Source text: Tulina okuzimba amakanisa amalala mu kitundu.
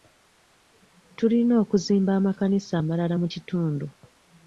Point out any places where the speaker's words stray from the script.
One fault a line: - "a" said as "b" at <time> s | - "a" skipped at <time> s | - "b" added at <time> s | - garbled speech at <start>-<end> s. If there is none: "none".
none